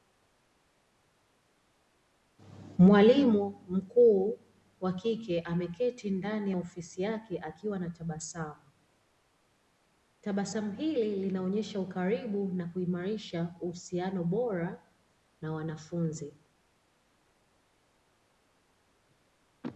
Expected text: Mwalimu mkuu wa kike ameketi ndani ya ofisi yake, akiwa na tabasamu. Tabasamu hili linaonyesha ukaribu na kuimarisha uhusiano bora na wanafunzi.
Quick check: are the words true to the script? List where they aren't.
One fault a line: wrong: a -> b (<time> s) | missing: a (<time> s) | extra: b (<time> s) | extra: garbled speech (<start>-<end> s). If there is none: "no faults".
no faults